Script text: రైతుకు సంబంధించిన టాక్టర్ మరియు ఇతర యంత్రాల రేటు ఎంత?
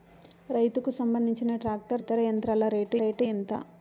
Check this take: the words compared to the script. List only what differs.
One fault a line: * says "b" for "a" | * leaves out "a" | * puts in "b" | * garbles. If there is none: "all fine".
* leaves out "మరియు"
* puts in "రేటు"